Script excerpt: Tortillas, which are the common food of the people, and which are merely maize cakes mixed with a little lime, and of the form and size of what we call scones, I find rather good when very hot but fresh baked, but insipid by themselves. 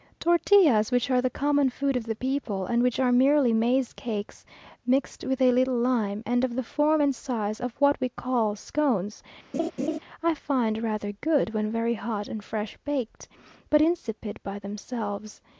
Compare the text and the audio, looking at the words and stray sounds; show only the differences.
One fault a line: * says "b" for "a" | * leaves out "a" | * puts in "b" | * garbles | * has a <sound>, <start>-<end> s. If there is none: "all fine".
* has a laugh, 9.5-10.0 s
* says "and" for "but"